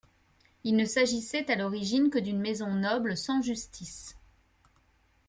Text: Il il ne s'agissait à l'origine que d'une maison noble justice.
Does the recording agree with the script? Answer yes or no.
no